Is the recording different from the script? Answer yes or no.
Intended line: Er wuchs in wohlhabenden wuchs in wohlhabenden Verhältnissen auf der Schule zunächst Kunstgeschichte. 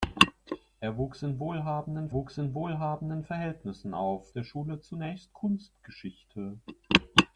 no